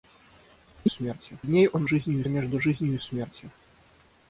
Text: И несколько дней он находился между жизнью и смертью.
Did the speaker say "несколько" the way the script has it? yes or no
no